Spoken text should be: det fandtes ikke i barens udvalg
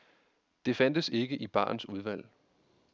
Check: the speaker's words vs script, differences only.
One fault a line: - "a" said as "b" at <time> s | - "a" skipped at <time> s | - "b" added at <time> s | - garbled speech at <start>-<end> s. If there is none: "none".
none